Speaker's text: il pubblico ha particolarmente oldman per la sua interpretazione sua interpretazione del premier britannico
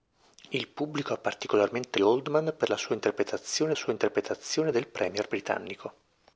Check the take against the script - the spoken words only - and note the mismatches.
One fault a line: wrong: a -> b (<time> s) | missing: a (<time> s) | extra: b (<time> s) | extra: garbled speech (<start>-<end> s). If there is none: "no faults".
no faults